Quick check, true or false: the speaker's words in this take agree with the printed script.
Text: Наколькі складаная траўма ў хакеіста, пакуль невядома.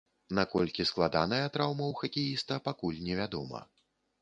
true